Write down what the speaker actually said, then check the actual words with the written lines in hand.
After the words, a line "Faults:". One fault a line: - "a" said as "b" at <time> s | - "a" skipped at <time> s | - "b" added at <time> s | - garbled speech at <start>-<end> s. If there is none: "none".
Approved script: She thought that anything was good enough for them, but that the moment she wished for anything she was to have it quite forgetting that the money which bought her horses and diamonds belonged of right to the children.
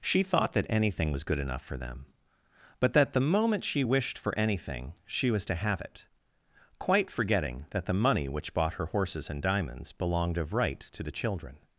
She thought that anything was good enough for them, but that the moment she wished for anything she was to have it quite forgetting that the money which bought her horses and diamonds belonged of right to the children.
Faults:
none